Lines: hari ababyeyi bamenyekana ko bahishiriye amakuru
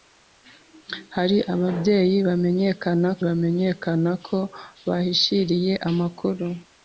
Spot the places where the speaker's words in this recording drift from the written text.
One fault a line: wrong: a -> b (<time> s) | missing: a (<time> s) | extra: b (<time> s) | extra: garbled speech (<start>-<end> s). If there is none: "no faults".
extra: bamenyekana (3.3 s)